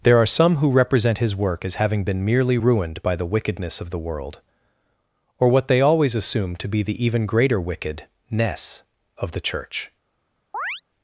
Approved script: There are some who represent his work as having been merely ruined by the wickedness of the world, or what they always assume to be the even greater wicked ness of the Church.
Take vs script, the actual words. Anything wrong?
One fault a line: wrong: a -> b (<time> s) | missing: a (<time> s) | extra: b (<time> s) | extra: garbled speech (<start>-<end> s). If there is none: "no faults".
no faults